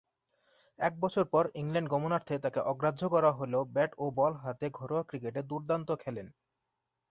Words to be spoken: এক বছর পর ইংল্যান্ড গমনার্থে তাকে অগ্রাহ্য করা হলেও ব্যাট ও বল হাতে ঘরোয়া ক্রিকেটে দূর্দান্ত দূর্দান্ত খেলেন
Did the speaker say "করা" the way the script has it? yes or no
yes